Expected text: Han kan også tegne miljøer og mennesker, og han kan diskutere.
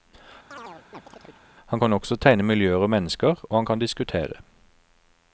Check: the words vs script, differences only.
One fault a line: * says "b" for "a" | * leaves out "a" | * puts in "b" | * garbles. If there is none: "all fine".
all fine